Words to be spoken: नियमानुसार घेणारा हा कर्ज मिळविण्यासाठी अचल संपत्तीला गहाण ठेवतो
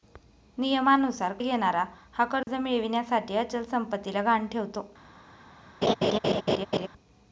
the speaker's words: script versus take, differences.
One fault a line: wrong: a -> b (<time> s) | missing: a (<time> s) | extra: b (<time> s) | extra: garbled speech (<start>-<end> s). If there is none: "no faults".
no faults